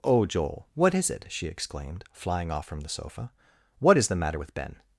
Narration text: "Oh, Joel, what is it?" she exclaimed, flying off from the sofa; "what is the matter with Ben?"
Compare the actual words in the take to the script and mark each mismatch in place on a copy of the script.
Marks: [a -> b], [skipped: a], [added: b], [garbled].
"Oh, Joel, what is it?" she exclaimed, flying off from the sofa; "what is the matter with Ben?"